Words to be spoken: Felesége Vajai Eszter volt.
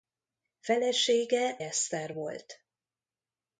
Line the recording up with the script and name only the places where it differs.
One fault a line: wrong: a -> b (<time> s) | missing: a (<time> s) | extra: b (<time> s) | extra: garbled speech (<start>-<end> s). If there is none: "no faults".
missing: Vajai (1.6 s)